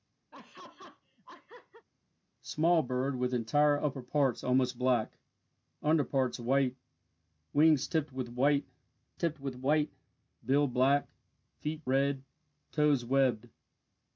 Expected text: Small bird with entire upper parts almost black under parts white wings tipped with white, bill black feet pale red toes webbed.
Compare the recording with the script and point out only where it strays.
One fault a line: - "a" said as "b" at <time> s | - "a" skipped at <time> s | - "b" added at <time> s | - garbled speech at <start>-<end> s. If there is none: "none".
- "tipped with white" added at 9.2 s
- "pale" skipped at 11.8 s